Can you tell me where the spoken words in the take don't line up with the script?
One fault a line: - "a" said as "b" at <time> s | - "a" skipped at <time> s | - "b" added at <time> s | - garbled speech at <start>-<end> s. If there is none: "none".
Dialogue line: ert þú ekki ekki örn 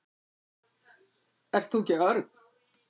- "ekki" skipped at 2.0 s